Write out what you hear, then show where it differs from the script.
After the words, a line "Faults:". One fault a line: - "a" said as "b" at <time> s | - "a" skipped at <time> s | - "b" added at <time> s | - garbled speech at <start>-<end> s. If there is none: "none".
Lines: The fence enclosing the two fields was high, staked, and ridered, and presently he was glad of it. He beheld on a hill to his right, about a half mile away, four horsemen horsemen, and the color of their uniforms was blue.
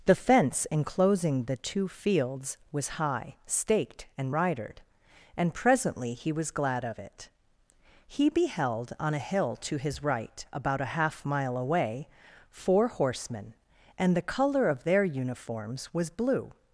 The fence enclosing the two fields was high, staked, and ridered, and presently he was glad of it. He beheld on a hill to his right, about a half mile away, four horsemen, and the color of their uniforms was blue.
Faults:
- "horsemen" skipped at 13.5 s